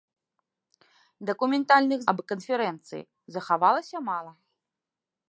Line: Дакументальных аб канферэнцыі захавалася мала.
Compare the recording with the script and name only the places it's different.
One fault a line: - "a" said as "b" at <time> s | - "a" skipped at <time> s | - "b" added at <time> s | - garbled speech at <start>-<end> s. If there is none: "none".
none